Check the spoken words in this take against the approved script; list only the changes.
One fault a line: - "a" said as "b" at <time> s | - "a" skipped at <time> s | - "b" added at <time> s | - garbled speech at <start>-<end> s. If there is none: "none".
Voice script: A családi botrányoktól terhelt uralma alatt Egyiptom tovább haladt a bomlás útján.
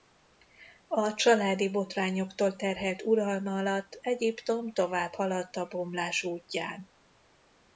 none